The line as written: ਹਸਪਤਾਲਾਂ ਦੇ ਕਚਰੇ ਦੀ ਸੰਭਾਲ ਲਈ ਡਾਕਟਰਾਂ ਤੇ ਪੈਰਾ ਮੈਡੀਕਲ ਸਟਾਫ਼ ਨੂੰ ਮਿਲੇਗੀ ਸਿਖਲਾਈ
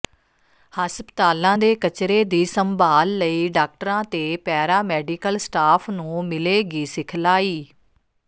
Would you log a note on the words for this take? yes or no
no